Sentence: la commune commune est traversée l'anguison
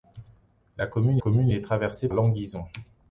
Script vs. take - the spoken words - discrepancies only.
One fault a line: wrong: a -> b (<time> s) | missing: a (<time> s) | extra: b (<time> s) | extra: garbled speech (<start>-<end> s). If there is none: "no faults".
no faults